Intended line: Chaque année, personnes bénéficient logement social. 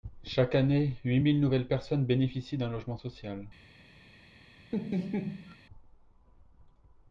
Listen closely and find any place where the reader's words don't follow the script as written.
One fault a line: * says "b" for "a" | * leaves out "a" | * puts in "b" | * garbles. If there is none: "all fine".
* puts in "huit mille nouvelles"
* puts in "d'un"